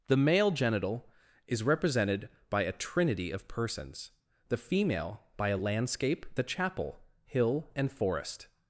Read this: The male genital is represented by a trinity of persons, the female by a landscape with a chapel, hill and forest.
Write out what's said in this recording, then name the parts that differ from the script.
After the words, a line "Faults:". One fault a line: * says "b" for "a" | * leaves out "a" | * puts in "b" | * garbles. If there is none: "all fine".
The male genital is represented by a trinity of persons, the female by a landscape a chapel, hill and forest.
Faults:
* leaves out "with"